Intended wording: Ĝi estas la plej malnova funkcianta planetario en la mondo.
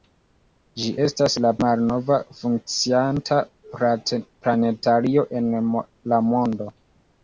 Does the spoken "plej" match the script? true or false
false